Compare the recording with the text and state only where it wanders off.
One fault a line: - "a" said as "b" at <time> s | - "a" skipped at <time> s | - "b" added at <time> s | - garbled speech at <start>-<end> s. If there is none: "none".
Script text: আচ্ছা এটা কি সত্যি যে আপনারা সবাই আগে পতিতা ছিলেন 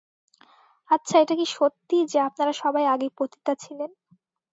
none